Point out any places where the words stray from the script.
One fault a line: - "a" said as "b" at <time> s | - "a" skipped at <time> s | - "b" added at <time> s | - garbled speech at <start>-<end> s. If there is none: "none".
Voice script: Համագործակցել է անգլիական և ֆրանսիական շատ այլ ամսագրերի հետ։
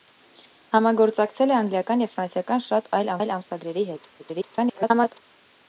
- "այլ" added at 3.2 s
- garbled speech at 4.2-5.2 s